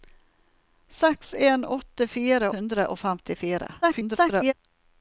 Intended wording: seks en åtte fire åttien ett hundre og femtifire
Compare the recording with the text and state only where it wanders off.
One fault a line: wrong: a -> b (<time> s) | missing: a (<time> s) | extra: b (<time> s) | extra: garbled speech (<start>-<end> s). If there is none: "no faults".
missing: åttien ett (2.5 s)
extra: garbled speech (3.8-4.5 s)